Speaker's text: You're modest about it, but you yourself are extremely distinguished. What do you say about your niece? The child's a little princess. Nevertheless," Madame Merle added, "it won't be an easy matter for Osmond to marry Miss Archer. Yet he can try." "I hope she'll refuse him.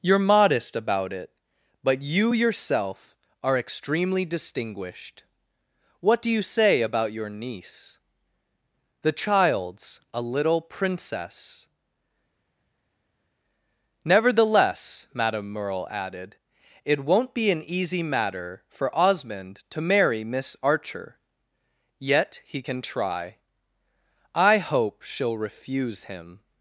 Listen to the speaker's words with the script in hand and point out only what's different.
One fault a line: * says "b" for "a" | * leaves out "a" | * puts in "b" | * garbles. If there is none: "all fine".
all fine